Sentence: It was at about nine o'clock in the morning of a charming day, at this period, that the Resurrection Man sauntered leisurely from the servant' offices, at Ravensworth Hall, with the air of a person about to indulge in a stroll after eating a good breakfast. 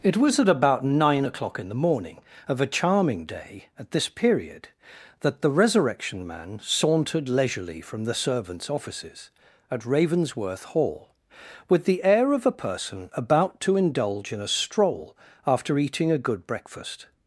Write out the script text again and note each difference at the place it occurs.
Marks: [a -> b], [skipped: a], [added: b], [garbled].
It was at about nine o'clock in the morning of a charming day, at this period, that the Resurrection Man sauntered leisurely from the [servant' -> servants] offices, at Ravensworth Hall, with the air of a person about to indulge in a stroll after eating a good breakfast.